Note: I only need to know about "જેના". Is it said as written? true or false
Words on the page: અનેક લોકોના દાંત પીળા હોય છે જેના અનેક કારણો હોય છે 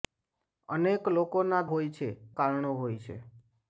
false